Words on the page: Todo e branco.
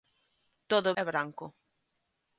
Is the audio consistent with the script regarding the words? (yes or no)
yes